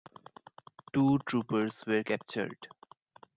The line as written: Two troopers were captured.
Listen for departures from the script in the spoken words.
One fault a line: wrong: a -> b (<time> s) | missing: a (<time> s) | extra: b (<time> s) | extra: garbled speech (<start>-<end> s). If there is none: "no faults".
no faults